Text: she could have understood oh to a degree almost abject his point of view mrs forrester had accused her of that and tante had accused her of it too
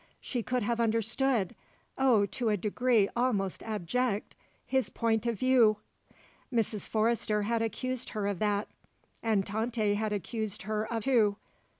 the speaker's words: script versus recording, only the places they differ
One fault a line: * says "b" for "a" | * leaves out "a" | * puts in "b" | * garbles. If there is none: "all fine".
* leaves out "it"